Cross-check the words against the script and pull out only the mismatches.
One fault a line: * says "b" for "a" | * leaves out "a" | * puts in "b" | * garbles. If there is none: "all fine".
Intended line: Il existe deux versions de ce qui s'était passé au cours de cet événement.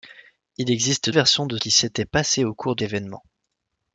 * leaves out "deux"
* leaves out "ce"
* leaves out "cet"